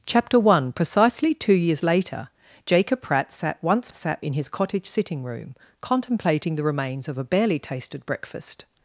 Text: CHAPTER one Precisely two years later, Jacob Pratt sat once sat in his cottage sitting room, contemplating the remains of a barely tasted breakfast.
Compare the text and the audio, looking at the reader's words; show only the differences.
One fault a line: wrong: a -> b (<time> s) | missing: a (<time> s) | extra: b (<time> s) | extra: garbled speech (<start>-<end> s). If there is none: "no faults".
no faults